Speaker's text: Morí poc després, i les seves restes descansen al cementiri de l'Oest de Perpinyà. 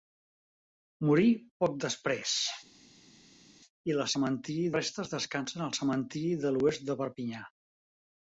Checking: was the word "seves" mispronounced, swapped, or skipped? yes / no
yes